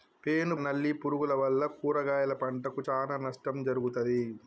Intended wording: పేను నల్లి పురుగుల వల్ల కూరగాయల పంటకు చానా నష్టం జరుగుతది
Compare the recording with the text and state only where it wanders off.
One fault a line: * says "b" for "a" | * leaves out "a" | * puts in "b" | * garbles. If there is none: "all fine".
all fine